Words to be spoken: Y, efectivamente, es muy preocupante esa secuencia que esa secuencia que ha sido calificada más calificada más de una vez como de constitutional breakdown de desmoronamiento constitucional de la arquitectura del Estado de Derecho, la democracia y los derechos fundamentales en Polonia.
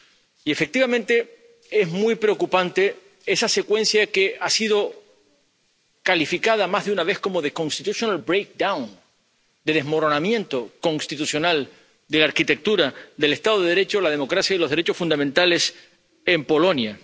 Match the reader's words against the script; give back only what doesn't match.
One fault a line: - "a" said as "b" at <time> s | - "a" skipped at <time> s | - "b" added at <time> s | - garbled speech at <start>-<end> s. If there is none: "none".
- "esa secuencia que" skipped at 4.4 s
- "calificada más" skipped at 6.8 s